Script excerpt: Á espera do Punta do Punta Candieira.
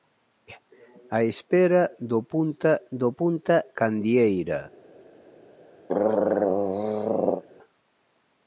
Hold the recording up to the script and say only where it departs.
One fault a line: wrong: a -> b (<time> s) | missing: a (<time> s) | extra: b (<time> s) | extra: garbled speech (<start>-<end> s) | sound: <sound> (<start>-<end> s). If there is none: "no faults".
sound: throat clearing (5.9-7.4 s)